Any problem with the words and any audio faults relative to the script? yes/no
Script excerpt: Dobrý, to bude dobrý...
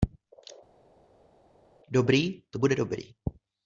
no